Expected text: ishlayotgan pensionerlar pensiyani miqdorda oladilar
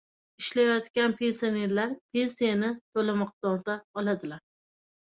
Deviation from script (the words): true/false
true